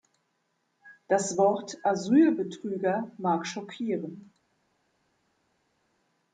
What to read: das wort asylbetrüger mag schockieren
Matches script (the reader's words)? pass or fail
pass